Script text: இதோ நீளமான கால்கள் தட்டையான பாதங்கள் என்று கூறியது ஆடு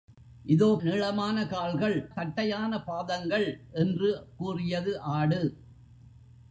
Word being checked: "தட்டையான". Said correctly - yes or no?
yes